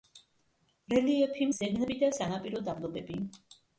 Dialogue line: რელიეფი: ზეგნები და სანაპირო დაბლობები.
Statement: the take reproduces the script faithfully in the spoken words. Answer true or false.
true